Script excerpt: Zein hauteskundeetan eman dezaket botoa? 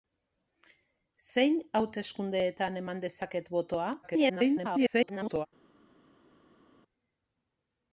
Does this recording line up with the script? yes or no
no